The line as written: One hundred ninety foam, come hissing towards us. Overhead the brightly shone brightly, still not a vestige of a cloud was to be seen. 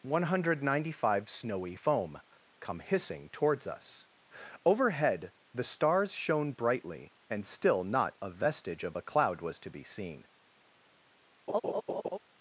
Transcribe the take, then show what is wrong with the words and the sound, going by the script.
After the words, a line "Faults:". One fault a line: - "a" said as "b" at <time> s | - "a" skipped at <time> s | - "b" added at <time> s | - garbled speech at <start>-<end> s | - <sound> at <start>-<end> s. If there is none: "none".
One hundred ninety five snowy foam, come hissing towards us. Overhead the stars shone brightly, and still not a vestige of a cloud was to be seen.
Faults:
- "five snowy" added at 1.0 s
- "brightly" said as "stars" at 5.6 s
- "and" added at 7.3 s
- laugh at 11.5-12.2 s